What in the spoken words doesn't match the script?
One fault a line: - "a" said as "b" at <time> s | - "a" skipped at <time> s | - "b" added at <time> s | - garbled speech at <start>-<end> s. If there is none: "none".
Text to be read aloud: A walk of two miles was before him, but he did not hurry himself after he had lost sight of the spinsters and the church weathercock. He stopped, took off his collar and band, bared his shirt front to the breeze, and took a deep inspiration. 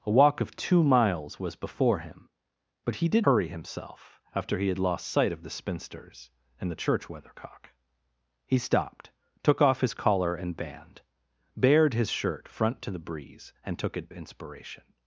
- "not" skipped at 3.3 s
- "deep" skipped at 14.1 s